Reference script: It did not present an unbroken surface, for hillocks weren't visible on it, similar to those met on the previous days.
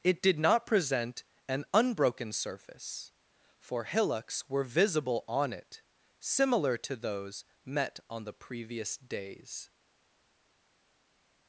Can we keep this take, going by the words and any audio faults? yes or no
no